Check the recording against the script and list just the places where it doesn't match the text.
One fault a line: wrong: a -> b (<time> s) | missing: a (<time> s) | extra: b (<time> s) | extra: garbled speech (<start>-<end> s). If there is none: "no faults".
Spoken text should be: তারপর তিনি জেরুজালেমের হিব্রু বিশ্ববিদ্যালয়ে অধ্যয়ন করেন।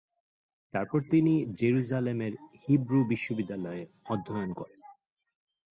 no faults